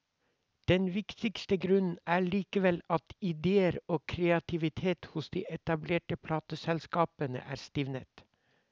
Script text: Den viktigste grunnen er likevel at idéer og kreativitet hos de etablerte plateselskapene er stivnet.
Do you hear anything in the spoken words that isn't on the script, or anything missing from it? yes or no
no